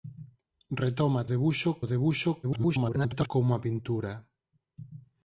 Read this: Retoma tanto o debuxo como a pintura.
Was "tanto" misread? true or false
true